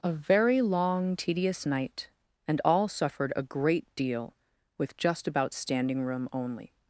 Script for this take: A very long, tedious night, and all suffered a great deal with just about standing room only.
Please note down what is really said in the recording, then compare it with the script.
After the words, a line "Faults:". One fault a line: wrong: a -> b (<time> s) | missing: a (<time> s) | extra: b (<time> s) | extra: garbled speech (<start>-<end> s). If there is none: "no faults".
A very long, tedious night, and all suffered a great deal with just about standing room only.
Faults:
no faults